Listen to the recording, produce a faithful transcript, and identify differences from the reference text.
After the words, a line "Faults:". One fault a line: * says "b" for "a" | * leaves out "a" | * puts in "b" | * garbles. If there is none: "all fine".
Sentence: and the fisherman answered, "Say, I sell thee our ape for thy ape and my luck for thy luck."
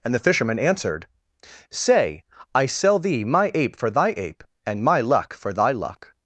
and the fisherman answered, "Say, I sell thee my ape for thy ape and my luck for thy luck."
Faults:
* says "my" for "our"